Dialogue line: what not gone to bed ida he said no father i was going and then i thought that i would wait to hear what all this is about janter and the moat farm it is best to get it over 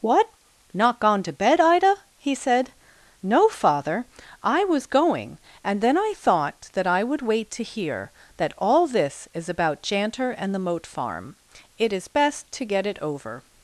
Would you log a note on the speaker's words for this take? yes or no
yes